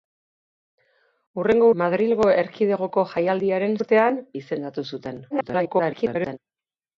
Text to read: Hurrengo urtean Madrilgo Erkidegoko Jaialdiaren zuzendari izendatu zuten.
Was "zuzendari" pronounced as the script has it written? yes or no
no